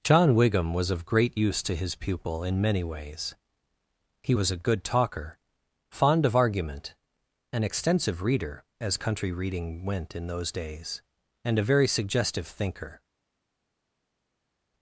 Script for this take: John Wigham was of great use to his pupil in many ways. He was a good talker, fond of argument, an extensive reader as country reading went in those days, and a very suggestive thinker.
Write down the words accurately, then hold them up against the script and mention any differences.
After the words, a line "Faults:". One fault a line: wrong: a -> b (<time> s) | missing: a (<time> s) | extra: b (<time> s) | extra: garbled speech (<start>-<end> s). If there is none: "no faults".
John Wigham was of great use to his pupil in many ways. He was a good talker, fond of argument, an extensive reader as country reading went in those days, and a very suggestive thinker.
Faults:
no faults